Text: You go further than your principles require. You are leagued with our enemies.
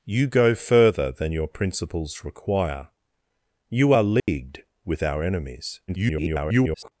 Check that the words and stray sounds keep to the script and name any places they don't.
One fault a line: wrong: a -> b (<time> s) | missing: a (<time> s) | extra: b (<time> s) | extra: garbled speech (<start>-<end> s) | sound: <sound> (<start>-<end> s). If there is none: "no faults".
sound: dropout (4.2-4.3 s)
extra: garbled speech (5.9-6.9 s)